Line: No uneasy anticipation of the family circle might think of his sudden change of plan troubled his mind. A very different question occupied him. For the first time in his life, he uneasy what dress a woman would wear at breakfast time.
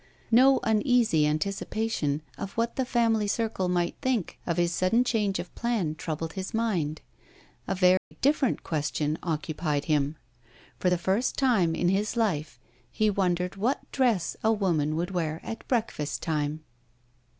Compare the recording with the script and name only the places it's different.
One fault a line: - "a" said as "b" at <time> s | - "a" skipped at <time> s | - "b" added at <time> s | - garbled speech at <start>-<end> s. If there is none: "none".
- "what" added at 2.5 s
- "uneasy" said as "wondered" at 13.1 s